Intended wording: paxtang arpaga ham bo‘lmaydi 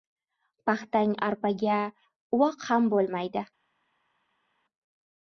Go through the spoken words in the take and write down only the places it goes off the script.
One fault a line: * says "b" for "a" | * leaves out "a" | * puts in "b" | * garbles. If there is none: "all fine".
* puts in "uvoq"